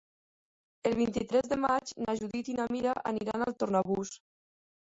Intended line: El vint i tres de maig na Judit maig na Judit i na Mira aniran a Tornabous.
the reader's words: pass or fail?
fail